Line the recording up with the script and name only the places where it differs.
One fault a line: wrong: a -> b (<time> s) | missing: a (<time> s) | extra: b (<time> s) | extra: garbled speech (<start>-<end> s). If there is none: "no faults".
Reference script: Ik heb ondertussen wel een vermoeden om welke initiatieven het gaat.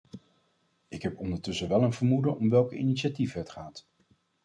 no faults